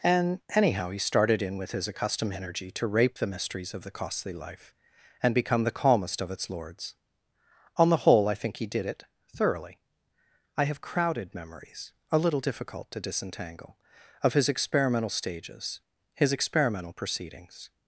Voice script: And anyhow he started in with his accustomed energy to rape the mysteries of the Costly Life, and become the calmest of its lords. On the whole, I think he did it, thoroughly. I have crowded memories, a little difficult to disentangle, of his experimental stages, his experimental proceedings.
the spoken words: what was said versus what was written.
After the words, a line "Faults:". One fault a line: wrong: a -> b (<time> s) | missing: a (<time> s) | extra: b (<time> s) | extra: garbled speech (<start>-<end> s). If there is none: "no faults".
And anyhow he started in with his accustomed energy to rape the mysteries of the Costly Life, and become the calmest of its lords. On the whole, I think he did it, thoroughly. I have crowded memories, a little difficult to disentangle, of his experimental stages, his experimental proceedings.
Faults:
no faults